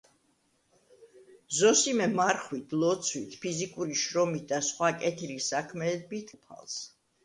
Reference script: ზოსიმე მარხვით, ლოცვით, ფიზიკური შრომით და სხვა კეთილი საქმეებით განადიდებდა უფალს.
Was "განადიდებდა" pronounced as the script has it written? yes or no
no